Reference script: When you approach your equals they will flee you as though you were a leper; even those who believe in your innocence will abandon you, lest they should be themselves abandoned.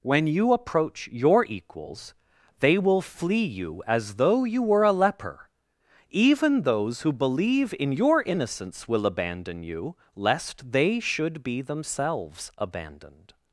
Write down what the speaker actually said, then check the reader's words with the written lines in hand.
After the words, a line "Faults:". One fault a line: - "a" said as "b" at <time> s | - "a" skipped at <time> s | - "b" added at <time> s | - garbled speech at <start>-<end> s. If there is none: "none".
When you approach your equals they will flee you as though you were a leper; even those who believe in your innocence will abandon you, lest they should be themselves abandoned.
Faults:
none